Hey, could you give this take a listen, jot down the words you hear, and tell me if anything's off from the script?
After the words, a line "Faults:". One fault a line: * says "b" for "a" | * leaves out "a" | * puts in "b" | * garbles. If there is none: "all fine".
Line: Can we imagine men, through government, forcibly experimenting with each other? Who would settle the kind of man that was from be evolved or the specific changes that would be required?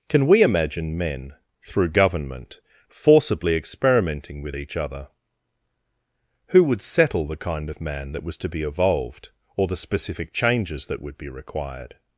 Can we imagine men, through government, forcibly experimenting with each other? Who would settle the kind of man that was to be evolved or the specific changes that would be required?
Faults:
* says "to" for "from"